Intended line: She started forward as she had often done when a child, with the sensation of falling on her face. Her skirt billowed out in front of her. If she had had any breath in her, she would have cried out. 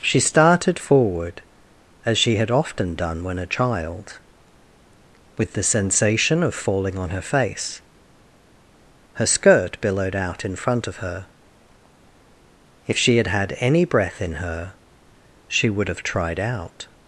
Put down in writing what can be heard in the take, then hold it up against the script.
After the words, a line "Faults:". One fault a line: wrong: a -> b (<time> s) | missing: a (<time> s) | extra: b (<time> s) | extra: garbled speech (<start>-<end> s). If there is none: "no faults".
She started forward as she had often done when a child, with the sensation of falling on her face. Her skirt billowed out in front of her. If she had had any breath in her, she would have tried out.
Faults:
wrong: cried -> tried (16.0 s)